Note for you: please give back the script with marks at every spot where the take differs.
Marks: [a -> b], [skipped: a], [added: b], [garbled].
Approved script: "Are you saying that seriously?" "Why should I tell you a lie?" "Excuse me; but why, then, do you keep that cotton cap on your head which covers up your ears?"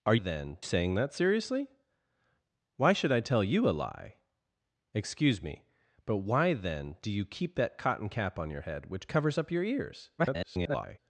"Are [you -> then] saying that seriously?" "Why should I tell you a lie?" "Excuse me; but why, then, do you keep that cotton cap on your head which covers up your ears?" [garbled]